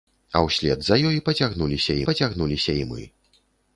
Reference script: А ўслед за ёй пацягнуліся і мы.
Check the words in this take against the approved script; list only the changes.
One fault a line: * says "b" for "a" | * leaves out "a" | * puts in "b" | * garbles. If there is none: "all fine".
* puts in "пацягнуліся"